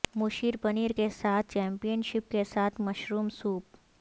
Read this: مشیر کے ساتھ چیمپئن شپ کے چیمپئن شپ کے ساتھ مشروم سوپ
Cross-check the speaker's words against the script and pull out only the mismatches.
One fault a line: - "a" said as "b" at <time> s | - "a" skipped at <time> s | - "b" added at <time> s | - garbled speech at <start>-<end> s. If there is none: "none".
- "پنیر" added at 0.6 s
- "چیمپئن شپ کے" skipped at 2.4 s